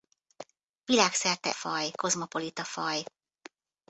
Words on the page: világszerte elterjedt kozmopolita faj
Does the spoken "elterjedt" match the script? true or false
false